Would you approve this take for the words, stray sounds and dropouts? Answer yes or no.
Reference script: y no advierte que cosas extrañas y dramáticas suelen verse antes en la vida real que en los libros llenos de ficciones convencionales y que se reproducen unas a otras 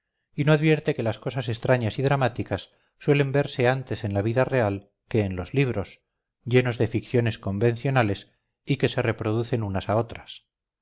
no